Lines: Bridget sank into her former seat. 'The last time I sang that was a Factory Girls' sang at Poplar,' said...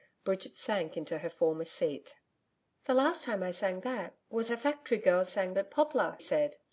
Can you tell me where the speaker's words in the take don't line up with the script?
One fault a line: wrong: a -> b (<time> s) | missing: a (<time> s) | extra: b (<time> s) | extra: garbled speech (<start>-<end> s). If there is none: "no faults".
no faults